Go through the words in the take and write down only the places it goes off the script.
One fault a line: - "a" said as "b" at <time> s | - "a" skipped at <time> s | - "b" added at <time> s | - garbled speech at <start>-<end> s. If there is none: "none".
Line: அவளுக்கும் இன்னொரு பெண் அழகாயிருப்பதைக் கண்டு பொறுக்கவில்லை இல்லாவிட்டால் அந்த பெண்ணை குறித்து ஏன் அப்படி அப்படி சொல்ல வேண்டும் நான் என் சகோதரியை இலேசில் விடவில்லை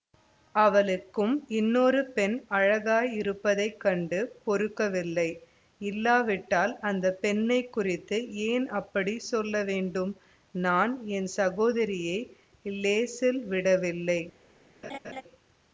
- "அப்படி" skipped at 9.2 s